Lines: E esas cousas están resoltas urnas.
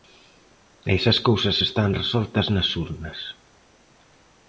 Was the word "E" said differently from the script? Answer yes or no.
no